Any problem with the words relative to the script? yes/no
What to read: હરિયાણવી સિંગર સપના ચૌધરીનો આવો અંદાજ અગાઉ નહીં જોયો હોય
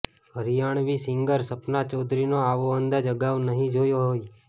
no